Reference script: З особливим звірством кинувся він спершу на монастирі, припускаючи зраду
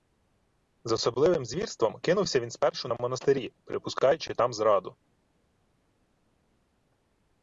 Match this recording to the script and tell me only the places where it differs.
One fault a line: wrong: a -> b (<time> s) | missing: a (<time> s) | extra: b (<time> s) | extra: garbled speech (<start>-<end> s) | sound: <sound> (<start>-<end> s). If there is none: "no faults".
extra: там (4.3 s)